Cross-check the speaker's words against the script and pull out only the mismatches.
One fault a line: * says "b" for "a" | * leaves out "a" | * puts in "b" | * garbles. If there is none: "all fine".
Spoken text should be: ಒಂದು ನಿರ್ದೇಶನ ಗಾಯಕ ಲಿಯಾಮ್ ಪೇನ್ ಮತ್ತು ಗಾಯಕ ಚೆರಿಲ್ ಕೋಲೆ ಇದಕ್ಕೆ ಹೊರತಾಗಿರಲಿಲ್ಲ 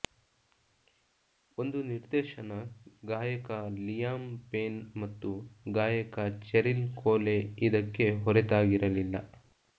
all fine